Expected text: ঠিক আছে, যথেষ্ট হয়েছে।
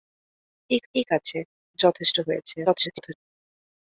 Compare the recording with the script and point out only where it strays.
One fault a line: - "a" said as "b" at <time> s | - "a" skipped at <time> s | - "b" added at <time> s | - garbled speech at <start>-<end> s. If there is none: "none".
- "ঠিক" added at 0.9 s
- garbled speech at 2.7-3.1 s